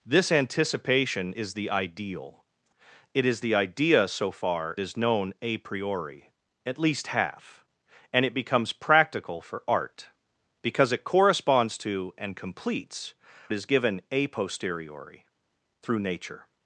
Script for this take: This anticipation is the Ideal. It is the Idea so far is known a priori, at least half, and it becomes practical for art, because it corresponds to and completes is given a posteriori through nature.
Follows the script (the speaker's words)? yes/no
yes